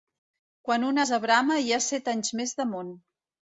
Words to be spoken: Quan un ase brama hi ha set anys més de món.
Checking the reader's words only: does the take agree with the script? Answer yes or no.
yes